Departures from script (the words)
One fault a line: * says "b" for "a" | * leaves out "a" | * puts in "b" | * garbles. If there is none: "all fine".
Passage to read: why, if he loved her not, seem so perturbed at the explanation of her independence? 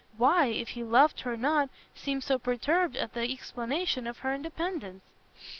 all fine